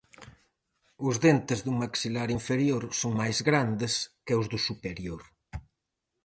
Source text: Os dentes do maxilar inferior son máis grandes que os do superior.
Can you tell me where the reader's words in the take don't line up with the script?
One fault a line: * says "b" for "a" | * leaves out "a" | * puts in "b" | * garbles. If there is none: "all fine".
all fine